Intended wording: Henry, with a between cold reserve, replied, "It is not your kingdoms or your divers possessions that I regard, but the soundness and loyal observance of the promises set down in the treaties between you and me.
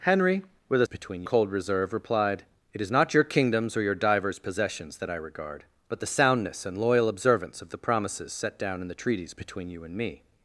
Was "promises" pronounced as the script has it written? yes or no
yes